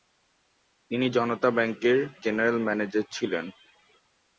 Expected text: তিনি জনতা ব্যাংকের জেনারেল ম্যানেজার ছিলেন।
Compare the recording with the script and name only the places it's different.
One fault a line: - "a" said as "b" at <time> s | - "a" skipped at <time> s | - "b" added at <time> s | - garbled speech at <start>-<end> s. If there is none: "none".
none